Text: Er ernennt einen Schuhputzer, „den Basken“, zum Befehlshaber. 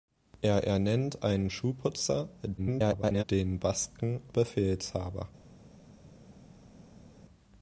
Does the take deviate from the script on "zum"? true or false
true